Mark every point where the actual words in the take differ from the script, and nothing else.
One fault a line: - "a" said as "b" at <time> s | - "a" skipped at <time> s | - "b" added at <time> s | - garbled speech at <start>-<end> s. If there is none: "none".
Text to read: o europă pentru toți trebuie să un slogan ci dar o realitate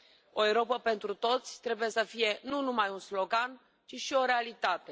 - "fie nu numai" added at 2.0 s
- "dar" said as "și" at 3.9 s